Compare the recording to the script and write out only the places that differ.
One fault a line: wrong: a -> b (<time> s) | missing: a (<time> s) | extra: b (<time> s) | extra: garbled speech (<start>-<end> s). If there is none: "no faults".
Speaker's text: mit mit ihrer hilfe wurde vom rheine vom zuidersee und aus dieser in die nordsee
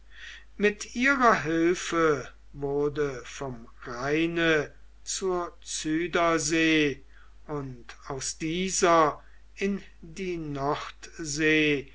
missing: mit (1.0 s)
wrong: vom -> zur (5.0 s)